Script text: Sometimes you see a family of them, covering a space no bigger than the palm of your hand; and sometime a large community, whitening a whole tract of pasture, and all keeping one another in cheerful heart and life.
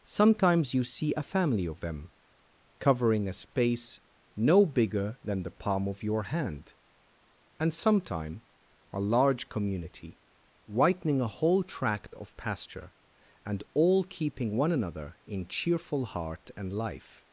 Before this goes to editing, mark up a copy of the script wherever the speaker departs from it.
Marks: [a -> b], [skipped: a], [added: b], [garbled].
Sometimes you see a family of them, covering a space no bigger than the palm of your hand; and sometime a large community, whitening a whole tract of pasture, and all keeping one another in cheerful heart and life.